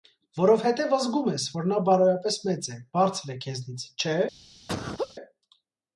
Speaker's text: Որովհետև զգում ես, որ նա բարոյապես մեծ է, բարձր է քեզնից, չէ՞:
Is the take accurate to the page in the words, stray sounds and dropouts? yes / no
no